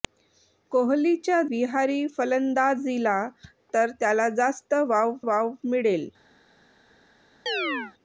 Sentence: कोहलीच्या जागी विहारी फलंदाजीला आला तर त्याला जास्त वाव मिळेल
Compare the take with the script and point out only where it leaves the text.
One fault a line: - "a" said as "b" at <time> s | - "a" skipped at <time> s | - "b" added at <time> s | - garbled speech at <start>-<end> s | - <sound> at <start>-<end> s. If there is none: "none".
- "जागी" skipped at 1.4 s
- "आला" skipped at 3.2 s
- "वाव" added at 5.3 s
- chirp at 7.5-7.9 s